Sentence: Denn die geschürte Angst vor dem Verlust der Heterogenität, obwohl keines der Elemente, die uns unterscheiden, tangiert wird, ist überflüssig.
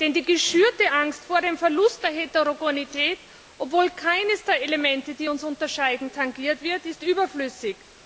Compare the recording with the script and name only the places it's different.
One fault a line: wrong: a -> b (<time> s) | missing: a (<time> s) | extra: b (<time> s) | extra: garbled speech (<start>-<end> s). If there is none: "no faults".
no faults